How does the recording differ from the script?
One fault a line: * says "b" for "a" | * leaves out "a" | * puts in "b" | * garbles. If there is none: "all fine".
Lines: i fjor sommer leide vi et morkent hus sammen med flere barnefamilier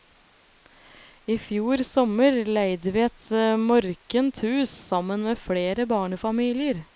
all fine